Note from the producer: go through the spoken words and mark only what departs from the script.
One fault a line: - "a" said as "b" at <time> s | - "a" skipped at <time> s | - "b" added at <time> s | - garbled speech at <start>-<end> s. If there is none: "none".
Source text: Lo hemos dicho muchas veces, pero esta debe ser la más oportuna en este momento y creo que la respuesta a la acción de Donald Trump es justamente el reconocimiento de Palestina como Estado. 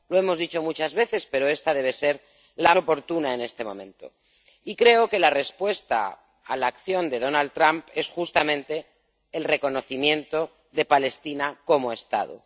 - "más" skipped at 2.7 s